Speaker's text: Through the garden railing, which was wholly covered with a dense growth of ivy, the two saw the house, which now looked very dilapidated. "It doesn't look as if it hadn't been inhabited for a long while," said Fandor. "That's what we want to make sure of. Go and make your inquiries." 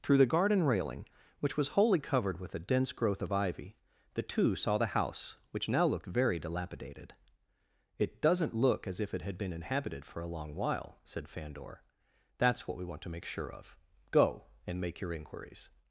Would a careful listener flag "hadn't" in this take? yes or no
yes